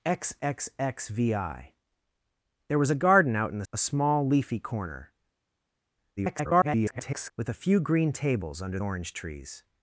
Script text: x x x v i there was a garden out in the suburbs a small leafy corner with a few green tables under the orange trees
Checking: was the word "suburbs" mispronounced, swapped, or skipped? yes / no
yes